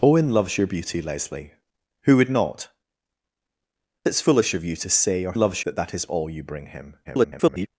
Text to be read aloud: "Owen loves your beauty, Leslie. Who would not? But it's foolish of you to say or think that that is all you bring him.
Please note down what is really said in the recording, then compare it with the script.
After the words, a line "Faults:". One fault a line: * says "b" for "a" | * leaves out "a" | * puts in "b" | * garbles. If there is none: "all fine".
"Owen loves your beauty, Leslie. Who would not? It's foolish of you to say or loves that that is all you bring him. [garbled]
Faults:
* leaves out "But"
* says "loves" for "think"
* garbles